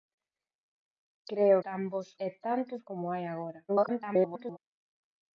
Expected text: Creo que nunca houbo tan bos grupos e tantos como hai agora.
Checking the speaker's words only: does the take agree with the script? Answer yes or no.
no